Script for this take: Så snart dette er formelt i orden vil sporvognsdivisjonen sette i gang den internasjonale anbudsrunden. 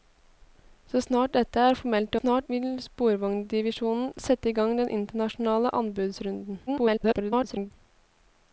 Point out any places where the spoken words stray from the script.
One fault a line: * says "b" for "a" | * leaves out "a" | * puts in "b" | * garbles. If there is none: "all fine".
* says "snart" for "orden"
* garbles